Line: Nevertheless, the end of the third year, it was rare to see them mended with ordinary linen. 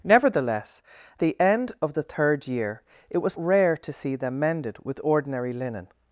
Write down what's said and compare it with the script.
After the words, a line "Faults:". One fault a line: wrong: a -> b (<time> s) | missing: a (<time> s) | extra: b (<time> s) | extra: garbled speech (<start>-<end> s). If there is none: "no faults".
Nevertheless, the end of the third year, it was rare to see them mended with ordinary linen.
Faults:
no faults